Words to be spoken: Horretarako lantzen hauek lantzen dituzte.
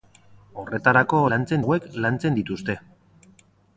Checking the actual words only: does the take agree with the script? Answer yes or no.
yes